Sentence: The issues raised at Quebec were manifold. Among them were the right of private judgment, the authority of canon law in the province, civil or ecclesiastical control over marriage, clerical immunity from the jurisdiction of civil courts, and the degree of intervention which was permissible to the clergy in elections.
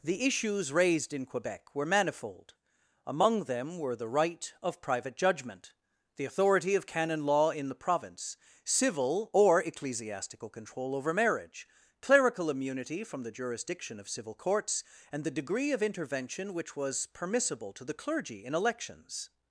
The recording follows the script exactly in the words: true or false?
false